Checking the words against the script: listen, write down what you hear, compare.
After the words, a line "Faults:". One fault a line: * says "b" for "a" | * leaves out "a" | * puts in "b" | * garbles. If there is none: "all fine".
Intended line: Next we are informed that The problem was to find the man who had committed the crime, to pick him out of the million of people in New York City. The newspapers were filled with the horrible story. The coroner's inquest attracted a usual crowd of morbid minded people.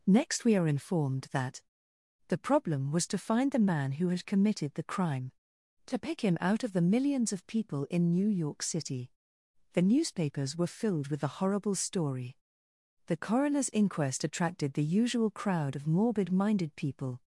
Next we are informed that The problem was to find the man who had committed the crime, to pick him out of the millions of people in New York City. The newspapers were filled with the horrible story. The coroner's inquest attracted the usual crowd of morbid minded people.
Faults:
* says "millions" for "million"
* says "the" for "a"